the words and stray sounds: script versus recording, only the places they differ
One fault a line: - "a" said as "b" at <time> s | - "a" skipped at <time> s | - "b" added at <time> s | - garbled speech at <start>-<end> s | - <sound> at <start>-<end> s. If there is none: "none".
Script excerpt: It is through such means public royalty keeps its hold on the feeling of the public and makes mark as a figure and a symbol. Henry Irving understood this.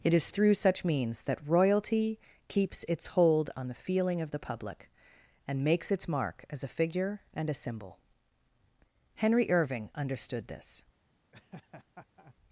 - "public" said as "that" at 1.2 s
- "its" added at 5.9 s
- laugh at 11.3-12.3 s